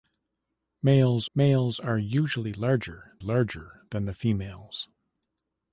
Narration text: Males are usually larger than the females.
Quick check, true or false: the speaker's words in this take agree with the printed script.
false